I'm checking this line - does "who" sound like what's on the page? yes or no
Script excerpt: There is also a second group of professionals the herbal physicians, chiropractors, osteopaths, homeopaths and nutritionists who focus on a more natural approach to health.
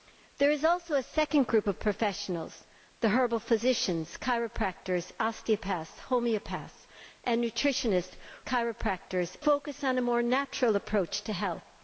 no